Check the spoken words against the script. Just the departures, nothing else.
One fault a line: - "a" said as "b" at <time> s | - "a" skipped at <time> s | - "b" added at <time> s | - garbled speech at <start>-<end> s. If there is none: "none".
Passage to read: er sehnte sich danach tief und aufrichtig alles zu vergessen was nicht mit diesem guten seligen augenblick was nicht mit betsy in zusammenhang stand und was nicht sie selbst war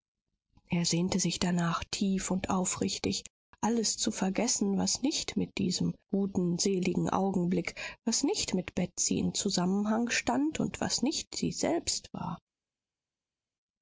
none